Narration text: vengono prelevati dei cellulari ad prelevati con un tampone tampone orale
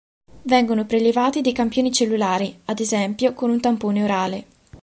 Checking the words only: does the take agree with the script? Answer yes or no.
no